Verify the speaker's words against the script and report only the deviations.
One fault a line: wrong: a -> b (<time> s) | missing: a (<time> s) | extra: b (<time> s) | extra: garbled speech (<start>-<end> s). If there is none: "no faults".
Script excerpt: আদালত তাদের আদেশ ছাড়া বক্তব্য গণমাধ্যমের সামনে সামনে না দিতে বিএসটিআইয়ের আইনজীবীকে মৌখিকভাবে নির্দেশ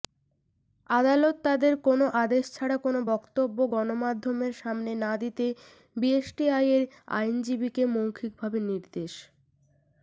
extra: কোনো (1.9 s)
extra: কোনো (2.8 s)
missing: সামনে (4.9 s)